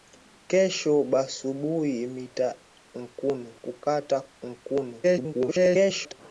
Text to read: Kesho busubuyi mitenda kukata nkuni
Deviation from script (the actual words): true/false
true